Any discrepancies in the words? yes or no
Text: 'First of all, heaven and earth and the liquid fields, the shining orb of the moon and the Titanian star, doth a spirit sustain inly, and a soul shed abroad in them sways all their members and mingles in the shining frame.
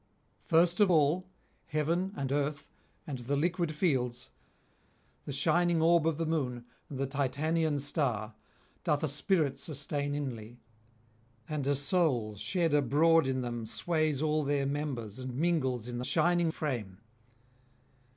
no